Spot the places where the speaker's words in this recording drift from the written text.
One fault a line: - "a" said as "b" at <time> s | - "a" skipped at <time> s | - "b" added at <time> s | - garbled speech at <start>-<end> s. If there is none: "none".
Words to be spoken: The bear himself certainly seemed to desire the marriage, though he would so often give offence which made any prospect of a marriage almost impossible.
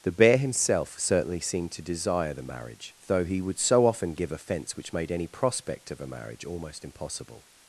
none